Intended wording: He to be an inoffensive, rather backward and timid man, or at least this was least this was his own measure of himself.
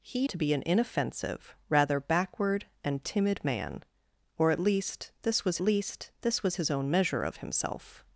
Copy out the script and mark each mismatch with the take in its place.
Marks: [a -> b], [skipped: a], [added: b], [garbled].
He to be an inoffensive, rather backward and timid man, or at least this was least this was his own measure of himself.